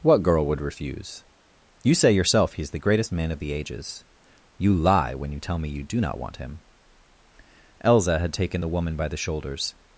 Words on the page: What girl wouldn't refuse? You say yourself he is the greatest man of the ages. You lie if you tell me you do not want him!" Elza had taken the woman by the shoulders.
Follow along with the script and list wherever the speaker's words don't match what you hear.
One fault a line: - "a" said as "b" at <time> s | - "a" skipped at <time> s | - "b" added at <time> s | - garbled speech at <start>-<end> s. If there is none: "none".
- "wouldn't" said as "would" at 0.5 s
- "if" said as "when" at 5.1 s